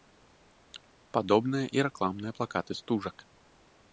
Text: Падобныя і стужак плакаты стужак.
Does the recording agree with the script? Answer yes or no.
no